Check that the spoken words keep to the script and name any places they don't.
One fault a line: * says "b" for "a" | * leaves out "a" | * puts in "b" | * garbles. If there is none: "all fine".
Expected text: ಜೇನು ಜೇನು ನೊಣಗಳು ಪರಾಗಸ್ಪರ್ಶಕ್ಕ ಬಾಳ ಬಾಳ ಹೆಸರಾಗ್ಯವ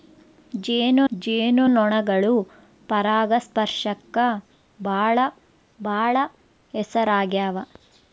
all fine